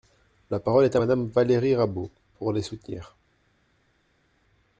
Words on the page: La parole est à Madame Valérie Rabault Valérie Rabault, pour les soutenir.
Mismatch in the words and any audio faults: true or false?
true